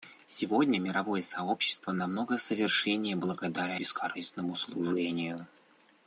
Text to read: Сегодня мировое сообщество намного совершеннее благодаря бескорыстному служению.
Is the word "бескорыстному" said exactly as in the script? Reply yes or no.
yes